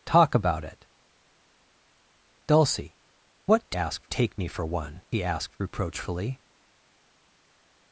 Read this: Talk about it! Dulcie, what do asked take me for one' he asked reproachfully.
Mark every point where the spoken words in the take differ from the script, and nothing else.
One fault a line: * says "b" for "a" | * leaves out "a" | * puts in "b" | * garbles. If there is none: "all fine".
all fine